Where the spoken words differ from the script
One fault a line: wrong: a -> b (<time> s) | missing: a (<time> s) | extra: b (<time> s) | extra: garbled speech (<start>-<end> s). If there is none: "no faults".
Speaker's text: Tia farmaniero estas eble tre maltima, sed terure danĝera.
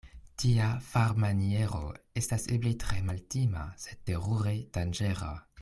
no faults